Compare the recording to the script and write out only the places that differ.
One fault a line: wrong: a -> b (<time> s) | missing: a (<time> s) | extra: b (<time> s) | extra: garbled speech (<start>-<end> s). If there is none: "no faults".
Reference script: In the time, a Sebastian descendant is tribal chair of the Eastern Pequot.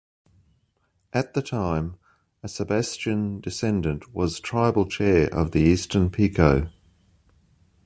wrong: In -> At (1.1 s)
wrong: is -> was (4.2 s)